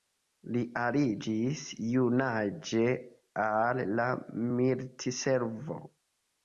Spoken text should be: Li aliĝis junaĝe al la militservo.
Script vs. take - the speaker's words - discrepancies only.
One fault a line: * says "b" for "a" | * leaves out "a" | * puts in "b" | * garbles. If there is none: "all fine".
all fine